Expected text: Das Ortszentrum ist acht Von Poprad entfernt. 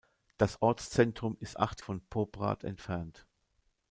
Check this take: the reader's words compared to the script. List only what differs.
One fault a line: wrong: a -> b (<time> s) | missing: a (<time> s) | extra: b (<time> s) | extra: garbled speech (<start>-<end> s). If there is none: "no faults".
no faults